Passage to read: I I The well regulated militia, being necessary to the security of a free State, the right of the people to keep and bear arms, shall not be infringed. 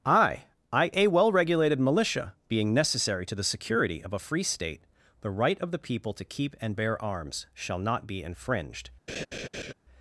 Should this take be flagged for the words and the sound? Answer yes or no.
yes